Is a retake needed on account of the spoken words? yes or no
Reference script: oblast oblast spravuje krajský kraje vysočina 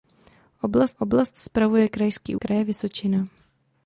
no